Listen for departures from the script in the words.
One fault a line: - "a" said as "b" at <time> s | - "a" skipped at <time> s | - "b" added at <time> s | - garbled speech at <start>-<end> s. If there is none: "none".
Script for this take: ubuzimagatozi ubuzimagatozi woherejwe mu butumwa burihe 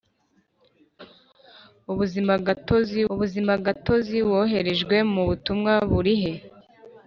none